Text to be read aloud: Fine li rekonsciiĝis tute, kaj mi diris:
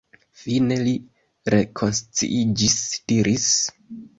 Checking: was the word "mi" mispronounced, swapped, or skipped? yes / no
yes